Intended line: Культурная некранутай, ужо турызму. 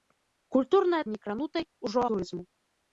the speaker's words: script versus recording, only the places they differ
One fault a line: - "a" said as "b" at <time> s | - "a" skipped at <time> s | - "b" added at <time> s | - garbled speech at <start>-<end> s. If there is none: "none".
none